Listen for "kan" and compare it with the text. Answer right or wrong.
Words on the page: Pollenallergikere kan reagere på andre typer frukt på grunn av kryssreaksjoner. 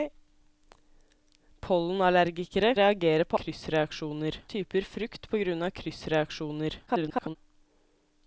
wrong